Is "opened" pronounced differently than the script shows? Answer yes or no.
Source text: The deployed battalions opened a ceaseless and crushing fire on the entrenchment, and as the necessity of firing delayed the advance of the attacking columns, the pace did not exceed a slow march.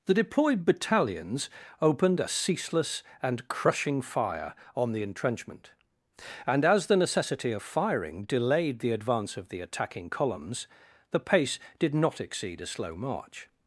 no